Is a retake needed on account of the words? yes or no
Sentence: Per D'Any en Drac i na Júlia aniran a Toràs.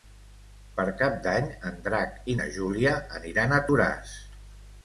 yes